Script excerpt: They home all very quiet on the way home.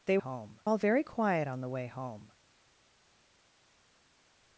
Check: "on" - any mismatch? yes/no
no